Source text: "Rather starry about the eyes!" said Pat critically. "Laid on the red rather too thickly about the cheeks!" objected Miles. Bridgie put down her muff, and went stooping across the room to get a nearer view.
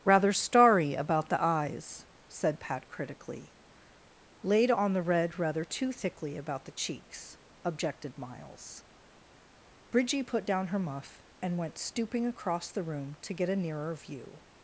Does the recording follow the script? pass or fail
pass